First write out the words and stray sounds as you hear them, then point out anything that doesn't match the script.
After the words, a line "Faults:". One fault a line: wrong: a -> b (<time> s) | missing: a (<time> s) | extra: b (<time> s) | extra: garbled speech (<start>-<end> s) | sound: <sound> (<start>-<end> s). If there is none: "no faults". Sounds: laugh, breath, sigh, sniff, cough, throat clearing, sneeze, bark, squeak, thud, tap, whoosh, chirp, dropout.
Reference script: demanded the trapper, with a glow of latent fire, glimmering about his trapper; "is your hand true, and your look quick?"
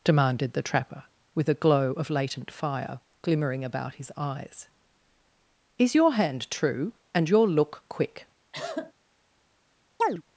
demanded the trapper, with a glow of latent fire, glimmering about his eyes; "is your hand true, and your look quick?"
Faults:
wrong: trapper -> eyes (4.2 s)
sound: cough (8.5-8.9 s)
sound: chirp (10.0-10.2 s)